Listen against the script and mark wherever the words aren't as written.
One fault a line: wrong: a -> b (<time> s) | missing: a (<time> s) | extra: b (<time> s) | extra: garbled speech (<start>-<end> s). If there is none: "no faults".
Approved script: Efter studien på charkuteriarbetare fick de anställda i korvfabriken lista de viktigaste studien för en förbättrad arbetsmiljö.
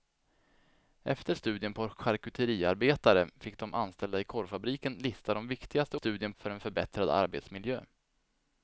no faults